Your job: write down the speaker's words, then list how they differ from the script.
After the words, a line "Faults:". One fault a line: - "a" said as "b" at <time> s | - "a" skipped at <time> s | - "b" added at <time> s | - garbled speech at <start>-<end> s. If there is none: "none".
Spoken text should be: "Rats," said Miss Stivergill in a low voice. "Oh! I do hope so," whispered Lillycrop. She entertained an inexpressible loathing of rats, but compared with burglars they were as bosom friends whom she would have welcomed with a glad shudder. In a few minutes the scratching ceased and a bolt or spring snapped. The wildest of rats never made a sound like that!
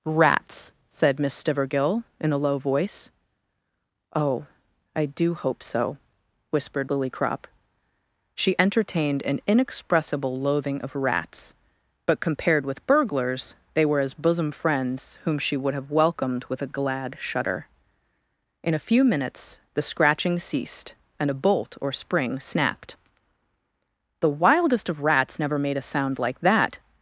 "Rats," said Miss Stivergill in a low voice. "Oh! I do hope so," whispered Lillycrop. She entertained an inexpressible loathing of rats, but compared with burglars they were as bosom friends whom she would have welcomed with a glad shudder. In a few minutes the scratching ceased and a bolt or spring snapped. The wildest of rats never made a sound like that!
Faults:
none